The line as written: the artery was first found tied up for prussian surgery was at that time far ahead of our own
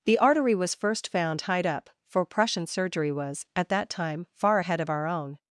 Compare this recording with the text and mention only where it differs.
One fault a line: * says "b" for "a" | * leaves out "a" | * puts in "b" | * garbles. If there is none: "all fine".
all fine